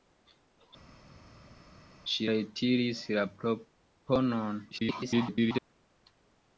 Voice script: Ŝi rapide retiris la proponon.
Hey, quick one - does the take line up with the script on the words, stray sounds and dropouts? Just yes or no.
no